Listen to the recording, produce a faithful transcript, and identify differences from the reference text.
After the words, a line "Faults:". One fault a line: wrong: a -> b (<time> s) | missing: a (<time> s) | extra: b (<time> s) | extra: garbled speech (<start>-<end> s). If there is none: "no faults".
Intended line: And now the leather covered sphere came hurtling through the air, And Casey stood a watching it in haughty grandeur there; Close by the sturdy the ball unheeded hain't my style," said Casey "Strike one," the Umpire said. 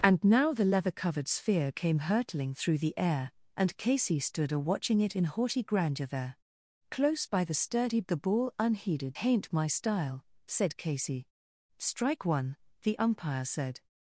And now the leather covered sphere came hurtling through the air, And Casey stood a watching it in haughty grandeur there; Close by the sturdy the ball unheeded hain't my style," said Casey "Strike one," the Umpire said.
Faults:
no faults